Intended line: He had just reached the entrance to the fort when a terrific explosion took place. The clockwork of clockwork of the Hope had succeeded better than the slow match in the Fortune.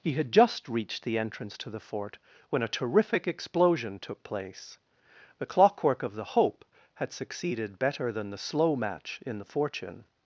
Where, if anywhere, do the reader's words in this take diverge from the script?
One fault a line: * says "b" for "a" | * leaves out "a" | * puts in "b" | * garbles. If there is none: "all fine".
* leaves out "clockwork of"